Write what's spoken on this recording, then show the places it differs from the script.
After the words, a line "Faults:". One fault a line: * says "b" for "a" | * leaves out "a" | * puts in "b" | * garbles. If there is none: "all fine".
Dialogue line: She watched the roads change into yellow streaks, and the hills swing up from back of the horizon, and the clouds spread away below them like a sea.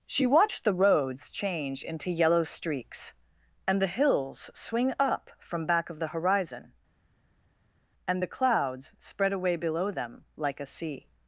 She watched the roads change into yellow streaks, and the hills swing up from back of the horizon, and the clouds spread away below them like a sea.
Faults:
all fine